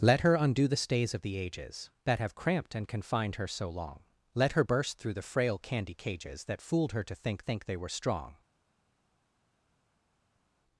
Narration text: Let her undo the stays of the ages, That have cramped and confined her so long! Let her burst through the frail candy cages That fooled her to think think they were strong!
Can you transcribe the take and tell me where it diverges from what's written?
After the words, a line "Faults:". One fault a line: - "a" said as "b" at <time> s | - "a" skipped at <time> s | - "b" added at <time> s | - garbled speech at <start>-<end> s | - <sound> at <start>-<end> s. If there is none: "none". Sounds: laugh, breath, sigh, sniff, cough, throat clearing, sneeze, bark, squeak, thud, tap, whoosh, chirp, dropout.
Let her undo the stays of the ages, That have cramped and confined her so long! Let her burst through the frail candy cages That fooled her to think think they were strong!
Faults:
none